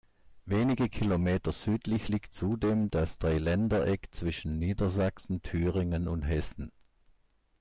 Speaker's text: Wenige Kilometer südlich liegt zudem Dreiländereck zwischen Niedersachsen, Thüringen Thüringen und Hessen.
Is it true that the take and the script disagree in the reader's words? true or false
true